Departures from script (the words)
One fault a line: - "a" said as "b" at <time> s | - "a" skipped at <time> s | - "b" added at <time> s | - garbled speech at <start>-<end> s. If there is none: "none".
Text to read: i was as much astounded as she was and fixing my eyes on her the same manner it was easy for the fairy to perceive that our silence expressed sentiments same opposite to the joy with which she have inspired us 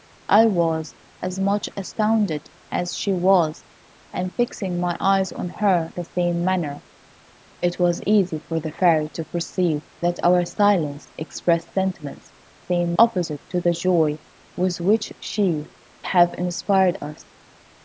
none